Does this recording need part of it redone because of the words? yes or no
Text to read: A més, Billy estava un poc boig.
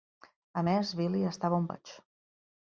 yes